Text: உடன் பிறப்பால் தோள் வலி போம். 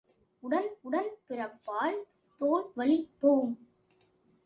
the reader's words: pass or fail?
fail